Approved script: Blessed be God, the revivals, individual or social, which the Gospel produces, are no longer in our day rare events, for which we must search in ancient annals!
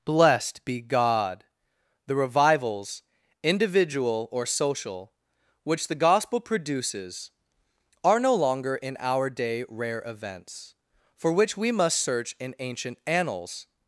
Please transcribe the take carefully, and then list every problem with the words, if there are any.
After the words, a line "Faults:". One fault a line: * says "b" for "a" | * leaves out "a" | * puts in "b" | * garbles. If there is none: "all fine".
Blessed be God, the revivals, individual or social, which the Gospel produces, are no longer in our day rare events, for which we must search in ancient annals!
Faults:
all fine